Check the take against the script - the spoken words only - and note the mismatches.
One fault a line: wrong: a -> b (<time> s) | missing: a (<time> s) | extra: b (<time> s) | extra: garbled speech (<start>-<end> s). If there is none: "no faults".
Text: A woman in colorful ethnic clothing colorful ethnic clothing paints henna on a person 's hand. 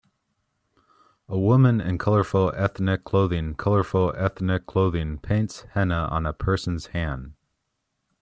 no faults